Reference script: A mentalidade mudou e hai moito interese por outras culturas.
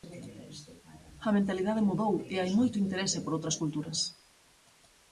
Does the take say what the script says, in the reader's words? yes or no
yes